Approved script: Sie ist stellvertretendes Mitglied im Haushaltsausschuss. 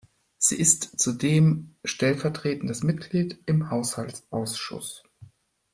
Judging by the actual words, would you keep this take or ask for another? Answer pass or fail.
fail